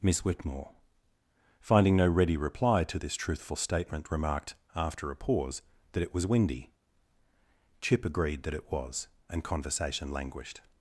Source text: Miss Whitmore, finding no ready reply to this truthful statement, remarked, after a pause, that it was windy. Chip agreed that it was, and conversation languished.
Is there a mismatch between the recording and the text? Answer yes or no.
no